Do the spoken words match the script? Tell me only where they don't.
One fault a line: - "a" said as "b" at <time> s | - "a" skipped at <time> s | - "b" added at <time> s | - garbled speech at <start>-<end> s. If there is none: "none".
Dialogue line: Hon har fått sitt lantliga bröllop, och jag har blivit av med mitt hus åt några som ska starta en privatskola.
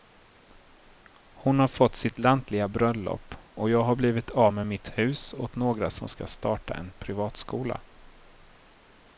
none